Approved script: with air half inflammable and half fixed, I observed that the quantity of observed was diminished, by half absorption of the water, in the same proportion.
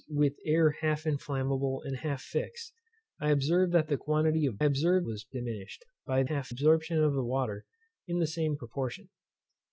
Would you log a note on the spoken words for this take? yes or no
no